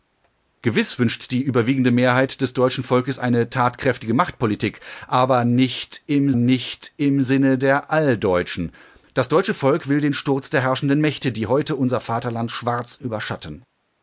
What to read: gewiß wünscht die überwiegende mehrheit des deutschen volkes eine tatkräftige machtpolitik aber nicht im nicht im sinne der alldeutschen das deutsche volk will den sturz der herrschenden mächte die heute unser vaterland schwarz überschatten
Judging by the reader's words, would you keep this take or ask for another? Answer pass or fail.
pass